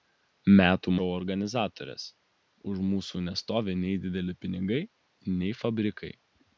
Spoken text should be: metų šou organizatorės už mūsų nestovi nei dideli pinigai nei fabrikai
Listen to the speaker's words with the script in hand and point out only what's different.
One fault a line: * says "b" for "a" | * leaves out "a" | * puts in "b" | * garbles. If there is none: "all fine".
all fine